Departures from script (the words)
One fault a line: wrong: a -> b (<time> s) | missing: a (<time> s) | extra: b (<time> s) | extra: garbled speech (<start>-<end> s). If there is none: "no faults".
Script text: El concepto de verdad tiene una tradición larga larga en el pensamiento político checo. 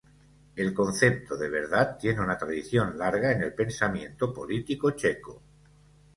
missing: larga (3.3 s)